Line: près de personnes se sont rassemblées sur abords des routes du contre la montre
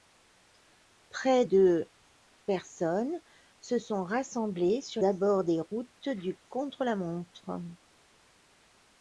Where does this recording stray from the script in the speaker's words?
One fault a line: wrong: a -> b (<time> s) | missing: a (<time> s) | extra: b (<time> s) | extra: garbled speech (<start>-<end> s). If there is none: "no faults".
no faults